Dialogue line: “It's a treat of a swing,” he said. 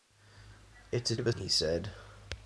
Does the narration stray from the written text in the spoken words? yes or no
yes